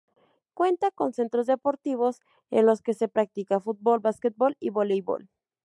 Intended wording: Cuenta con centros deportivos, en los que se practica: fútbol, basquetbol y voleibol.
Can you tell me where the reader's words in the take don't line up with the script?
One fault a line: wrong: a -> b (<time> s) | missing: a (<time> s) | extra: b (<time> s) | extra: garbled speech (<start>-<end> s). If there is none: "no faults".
no faults